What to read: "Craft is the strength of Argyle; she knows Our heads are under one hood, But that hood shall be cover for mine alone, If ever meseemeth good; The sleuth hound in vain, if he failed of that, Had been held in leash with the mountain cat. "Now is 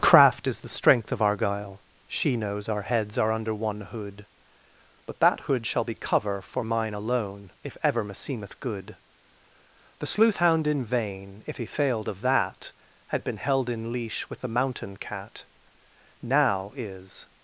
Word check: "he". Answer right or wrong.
right